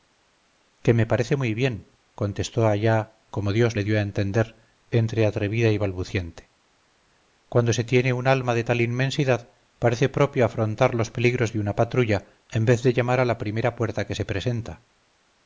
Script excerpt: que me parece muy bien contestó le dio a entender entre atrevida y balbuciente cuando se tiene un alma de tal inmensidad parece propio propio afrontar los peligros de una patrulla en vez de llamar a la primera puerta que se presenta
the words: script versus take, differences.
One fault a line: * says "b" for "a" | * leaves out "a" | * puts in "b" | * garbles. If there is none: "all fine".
* puts in "allá como dios"
* leaves out "propio"